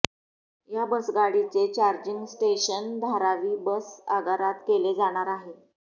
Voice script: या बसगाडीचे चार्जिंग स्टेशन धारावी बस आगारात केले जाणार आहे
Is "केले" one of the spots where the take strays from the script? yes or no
no